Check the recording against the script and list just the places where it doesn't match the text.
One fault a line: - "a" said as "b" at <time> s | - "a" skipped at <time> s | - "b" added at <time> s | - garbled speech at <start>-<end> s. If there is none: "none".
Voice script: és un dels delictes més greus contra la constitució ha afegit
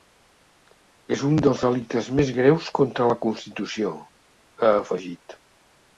none